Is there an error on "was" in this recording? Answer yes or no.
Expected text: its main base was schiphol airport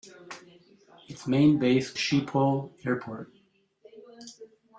yes